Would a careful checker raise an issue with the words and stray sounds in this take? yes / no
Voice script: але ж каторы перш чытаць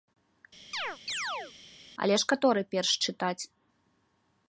yes